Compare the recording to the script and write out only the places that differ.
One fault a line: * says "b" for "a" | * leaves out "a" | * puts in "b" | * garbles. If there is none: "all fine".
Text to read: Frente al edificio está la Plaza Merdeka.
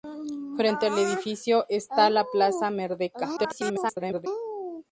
* garbles